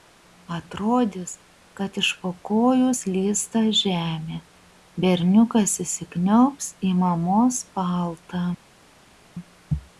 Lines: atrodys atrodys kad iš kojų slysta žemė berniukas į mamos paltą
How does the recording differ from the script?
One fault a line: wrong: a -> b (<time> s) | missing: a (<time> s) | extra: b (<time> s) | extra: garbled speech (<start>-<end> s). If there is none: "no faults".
missing: atrodys (1.3 s)
extra: po (2.2 s)
extra: įsikniaubs (5.9 s)